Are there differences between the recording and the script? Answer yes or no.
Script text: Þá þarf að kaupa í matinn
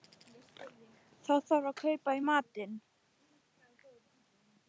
no